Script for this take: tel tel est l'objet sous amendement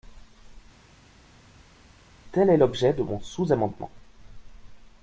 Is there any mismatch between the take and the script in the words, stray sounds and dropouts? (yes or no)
yes